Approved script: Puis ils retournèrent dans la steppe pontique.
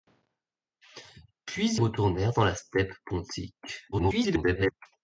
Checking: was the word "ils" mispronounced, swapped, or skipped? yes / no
yes